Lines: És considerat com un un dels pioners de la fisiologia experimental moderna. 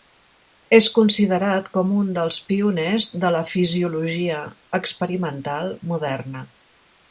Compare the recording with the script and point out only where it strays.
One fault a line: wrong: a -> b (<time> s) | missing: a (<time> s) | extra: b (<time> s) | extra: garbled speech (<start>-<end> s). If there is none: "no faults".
missing: un (2.1 s)